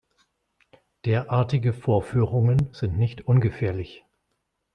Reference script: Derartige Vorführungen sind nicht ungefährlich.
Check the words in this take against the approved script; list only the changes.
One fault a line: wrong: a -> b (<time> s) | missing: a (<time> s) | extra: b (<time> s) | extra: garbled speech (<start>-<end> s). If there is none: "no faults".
no faults